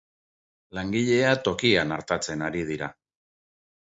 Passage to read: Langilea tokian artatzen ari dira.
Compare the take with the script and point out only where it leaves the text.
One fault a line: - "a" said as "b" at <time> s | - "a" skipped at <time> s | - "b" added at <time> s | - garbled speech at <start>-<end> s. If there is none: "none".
none